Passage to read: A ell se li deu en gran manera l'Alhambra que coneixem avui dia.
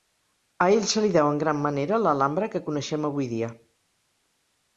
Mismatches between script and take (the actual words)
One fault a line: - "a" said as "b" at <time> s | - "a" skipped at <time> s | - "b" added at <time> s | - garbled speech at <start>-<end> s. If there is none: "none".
none